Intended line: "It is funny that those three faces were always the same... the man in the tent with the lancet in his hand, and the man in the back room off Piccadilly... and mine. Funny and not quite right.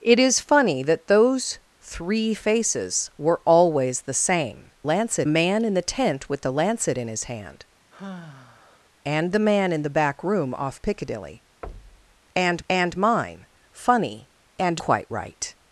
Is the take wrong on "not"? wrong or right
wrong